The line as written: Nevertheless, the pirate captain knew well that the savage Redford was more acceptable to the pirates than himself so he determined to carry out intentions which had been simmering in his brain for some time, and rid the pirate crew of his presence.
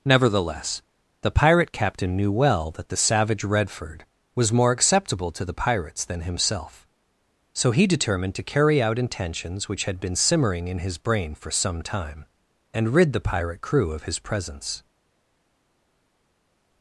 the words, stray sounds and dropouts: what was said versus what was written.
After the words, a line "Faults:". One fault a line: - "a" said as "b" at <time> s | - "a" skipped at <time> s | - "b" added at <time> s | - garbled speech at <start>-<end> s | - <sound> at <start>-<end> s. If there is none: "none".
Nevertheless, the pirate captain knew well that the savage Redford was more acceptable to the pirates than himself so he determined to carry out intentions which had been simmering in his brain for some time, and rid the pirate crew of his presence.
Faults:
none